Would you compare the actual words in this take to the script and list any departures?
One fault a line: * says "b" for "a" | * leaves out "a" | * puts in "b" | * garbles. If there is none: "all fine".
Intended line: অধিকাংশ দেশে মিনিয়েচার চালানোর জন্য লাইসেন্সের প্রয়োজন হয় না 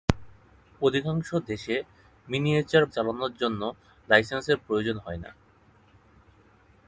all fine